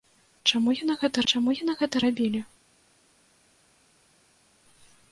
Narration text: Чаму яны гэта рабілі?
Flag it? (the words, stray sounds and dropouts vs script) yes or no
yes